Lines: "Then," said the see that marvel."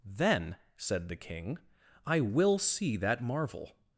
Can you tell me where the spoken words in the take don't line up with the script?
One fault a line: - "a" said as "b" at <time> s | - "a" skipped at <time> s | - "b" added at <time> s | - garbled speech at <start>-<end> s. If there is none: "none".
- "king I will" added at 1.1 s